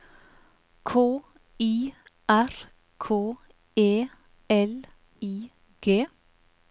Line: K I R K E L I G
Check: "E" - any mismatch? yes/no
no